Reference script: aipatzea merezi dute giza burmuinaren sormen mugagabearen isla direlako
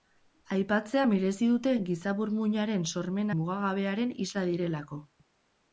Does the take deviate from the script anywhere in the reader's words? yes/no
no